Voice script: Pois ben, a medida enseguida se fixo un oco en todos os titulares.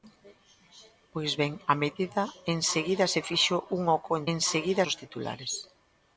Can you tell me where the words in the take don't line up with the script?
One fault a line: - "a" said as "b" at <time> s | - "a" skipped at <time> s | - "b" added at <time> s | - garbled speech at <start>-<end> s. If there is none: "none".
- "todos" said as "enseguida" at 4.3 s